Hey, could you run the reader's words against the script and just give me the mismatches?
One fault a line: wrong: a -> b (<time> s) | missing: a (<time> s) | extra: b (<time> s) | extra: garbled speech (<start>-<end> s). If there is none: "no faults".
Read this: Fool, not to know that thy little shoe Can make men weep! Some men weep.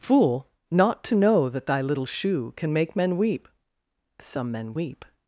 no faults